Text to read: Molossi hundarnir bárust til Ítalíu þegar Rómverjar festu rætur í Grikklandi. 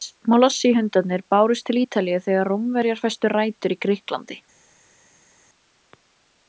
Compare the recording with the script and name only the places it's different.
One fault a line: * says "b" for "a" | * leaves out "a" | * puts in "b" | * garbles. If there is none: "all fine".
all fine